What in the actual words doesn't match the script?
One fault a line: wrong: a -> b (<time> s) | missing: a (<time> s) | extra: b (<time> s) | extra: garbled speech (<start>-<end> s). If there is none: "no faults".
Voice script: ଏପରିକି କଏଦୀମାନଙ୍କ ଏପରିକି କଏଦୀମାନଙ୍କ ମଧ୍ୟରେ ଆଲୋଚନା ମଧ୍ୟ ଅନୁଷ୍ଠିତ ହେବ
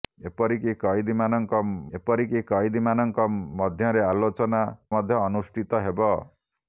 no faults